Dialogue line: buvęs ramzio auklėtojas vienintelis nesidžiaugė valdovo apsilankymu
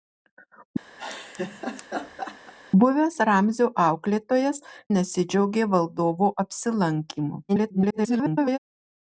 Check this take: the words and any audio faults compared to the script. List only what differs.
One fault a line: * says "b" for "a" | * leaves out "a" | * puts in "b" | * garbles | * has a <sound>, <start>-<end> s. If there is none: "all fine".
* has a laugh, 1.0-2.5 s
* leaves out "vienintelis"
* garbles